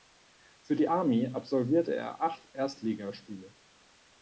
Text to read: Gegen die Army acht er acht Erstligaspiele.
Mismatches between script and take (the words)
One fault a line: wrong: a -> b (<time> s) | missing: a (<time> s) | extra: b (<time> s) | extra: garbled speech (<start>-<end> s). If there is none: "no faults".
wrong: Gegen -> Für (0.6 s)
wrong: acht -> absolvierte (1.3 s)